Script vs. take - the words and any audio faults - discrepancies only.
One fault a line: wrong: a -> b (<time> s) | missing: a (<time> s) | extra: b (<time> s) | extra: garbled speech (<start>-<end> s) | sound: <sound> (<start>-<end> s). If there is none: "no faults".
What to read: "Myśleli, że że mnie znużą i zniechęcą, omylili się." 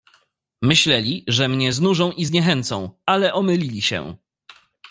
missing: że (1.5 s)
extra: ale (3.1 s)